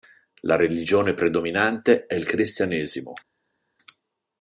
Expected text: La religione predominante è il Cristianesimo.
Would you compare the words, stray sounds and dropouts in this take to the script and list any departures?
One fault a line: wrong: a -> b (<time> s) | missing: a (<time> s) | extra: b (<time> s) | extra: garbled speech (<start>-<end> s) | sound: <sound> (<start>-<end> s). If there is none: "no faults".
no faults